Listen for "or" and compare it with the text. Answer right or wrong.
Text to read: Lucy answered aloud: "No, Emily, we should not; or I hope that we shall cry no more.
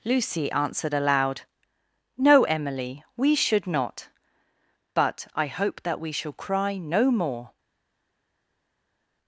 wrong